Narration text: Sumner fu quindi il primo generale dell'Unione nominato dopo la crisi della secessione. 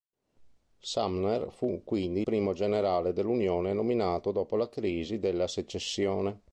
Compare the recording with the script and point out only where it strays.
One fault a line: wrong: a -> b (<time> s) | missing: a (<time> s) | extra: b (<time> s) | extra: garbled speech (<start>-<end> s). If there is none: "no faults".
missing: il (2.2 s)